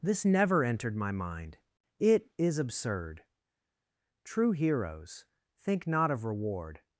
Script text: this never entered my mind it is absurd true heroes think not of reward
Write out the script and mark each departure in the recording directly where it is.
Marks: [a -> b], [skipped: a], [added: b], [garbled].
this never entered my mind it is absurd true heroes think not of reward